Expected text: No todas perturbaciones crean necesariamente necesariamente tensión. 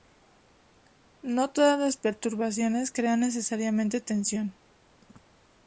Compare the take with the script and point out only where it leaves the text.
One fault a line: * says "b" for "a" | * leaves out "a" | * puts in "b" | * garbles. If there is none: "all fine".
* puts in "las"
* leaves out "necesariamente"